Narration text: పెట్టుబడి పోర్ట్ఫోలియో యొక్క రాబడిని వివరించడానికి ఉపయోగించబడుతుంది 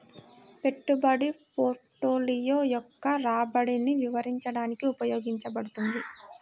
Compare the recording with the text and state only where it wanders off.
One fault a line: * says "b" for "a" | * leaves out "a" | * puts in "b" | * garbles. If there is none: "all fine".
all fine